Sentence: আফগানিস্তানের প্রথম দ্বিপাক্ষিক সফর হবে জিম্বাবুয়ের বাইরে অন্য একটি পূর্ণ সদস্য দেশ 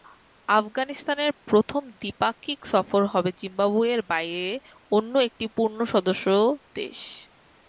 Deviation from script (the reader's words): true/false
false